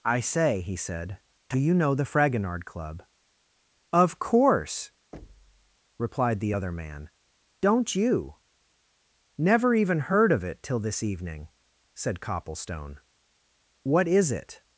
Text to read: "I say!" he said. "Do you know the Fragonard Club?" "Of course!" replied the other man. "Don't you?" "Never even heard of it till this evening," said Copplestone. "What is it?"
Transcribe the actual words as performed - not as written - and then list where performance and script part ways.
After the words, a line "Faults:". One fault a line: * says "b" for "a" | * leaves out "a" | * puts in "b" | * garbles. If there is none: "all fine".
"I say!" he said. "Do you know the Fragonard Club?" "Of course!" replied the other man. "Don't you?" "Never even heard of it till this evening," said Copplestone. "What is it?"
Faults:
all fine